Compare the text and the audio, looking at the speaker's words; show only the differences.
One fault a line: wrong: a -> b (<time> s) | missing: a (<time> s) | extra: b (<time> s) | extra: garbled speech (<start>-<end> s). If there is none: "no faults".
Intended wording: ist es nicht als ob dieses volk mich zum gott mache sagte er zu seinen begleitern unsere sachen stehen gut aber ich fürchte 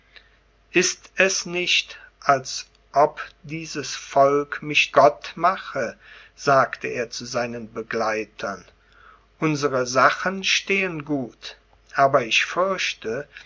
missing: zum (5.0 s)